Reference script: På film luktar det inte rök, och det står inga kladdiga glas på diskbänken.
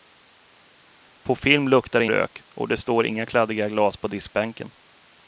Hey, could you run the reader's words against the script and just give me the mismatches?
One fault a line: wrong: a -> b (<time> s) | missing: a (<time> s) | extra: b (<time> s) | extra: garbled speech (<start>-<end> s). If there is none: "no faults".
missing: inte (2.1 s)